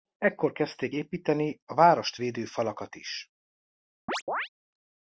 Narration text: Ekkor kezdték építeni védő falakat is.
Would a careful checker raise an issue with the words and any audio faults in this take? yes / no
yes